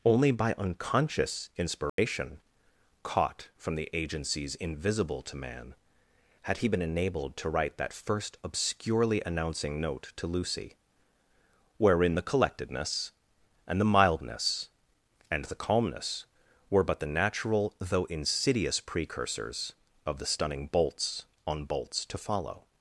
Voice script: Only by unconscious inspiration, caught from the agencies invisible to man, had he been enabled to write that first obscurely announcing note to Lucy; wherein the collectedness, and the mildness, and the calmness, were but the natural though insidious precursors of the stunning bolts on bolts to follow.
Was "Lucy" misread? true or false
false